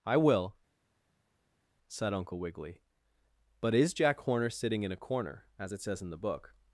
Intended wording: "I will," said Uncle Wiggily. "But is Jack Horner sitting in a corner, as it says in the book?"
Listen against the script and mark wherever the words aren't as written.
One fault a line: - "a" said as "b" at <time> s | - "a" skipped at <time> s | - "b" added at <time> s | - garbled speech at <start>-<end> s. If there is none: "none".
none